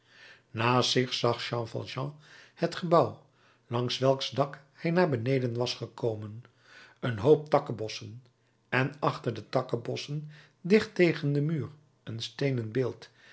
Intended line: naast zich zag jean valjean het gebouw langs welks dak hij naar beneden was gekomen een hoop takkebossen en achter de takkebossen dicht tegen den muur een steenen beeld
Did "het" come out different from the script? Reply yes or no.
no